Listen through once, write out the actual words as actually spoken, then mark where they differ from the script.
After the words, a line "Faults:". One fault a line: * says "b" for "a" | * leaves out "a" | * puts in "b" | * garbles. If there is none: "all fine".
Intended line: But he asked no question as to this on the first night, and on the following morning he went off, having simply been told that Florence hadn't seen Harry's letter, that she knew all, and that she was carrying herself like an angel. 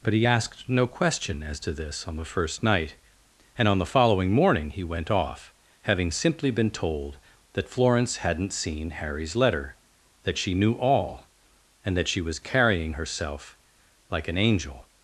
But he asked no question as to this on the first night, and on the following morning he went off, having simply been told that Florence hadn't seen Harry's letter, that she knew all, and that she was carrying herself like an angel.
Faults:
all fine